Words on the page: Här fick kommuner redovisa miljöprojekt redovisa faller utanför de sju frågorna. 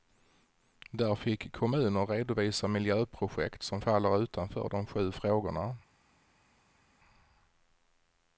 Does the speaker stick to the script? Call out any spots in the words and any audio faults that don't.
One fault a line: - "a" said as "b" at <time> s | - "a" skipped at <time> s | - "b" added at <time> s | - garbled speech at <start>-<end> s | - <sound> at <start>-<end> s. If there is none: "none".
- "Här" said as "Där" at 0.9 s
- "redovisa" said as "som" at 3.6 s